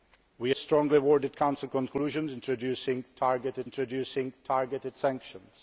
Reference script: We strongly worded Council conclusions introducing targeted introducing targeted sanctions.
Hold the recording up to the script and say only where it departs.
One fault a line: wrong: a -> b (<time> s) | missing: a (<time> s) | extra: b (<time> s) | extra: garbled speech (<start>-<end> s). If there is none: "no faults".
no faults